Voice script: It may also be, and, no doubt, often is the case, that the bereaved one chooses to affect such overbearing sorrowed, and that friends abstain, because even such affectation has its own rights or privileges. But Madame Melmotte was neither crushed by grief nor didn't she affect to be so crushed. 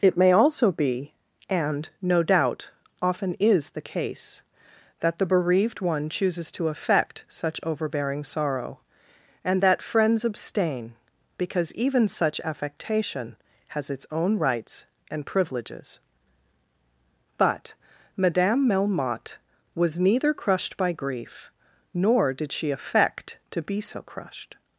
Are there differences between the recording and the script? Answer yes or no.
yes